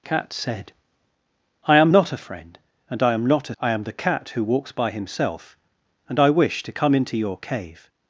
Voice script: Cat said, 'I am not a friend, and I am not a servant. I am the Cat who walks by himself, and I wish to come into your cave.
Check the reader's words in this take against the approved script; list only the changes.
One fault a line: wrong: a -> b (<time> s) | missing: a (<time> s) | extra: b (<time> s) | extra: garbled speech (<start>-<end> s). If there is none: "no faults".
missing: servant (3.5 s)